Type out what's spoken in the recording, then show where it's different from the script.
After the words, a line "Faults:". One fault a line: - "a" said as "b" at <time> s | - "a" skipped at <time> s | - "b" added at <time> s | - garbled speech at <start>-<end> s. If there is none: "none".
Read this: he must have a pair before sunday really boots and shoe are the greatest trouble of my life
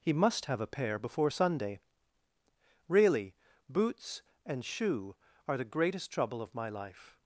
he must have a pair before sunday really boots and shoe are the greatest trouble of my life
Faults:
none